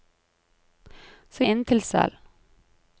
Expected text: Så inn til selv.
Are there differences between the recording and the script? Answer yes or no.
no